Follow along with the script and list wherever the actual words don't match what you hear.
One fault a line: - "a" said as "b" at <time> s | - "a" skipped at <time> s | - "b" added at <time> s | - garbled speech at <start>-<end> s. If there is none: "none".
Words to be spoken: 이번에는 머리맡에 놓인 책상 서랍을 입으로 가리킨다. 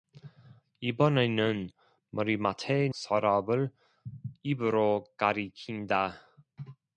- "놓인 책상" skipped at 2.9 s